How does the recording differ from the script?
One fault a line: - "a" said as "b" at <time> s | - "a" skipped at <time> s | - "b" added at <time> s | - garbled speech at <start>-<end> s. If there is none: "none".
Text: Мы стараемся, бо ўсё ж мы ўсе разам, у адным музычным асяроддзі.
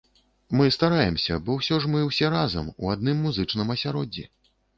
none